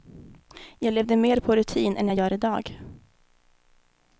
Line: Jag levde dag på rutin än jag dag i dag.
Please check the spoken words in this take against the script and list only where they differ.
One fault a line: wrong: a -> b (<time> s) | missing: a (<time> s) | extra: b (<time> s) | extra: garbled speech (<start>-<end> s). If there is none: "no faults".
wrong: dag -> mer (1.1 s)
wrong: dag -> gör (2.1 s)